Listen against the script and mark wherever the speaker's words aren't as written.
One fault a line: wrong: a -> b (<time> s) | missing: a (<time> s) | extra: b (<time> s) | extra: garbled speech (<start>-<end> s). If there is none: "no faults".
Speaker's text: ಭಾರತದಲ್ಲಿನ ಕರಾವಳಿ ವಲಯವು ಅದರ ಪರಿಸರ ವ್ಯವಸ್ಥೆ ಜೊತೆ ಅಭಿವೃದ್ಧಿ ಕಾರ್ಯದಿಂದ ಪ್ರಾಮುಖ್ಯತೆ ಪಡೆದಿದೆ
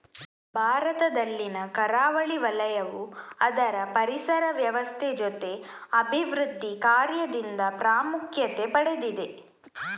no faults